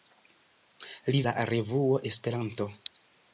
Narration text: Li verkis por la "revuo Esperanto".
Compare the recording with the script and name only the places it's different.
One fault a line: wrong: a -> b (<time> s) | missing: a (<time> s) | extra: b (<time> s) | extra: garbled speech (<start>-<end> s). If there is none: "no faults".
missing: verkis por (1.2 s)